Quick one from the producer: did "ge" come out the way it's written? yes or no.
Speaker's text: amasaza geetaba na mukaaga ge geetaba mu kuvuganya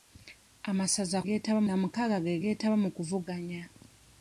yes